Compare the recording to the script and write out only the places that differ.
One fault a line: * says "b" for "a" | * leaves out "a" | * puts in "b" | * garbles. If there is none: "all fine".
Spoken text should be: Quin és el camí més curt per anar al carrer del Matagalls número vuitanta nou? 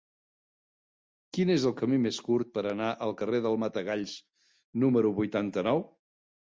all fine